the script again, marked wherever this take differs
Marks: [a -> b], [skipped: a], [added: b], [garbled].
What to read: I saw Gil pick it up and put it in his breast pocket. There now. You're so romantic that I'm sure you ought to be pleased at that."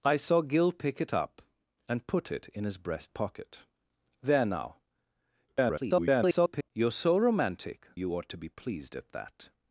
I saw Gil pick it up and put it in his breast pocket. There now. [garbled] You're so romantic [skipped: that I'm sure] you ought to be pleased at that."